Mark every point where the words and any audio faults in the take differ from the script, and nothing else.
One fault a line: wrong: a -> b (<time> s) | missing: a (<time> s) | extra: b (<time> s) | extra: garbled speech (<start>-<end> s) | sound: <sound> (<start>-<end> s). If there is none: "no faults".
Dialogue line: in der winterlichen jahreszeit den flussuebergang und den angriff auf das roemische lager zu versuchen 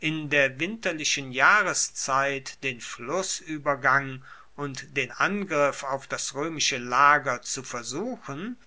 no faults